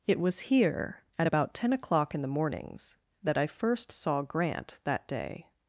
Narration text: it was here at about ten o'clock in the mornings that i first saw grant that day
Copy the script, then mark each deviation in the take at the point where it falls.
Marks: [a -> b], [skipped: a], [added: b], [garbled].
it was here at about ten o'clock in the mornings that i first saw grant that day